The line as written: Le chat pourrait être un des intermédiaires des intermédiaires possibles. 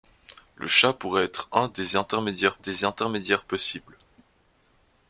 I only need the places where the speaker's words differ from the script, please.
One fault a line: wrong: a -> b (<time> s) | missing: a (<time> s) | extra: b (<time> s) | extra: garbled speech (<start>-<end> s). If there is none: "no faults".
no faults